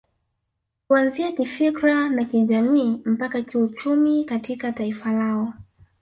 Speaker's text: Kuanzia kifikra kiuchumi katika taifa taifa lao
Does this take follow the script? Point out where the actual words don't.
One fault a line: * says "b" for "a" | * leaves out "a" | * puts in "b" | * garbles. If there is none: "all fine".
* puts in "na kijamii mpaka"
* leaves out "taifa"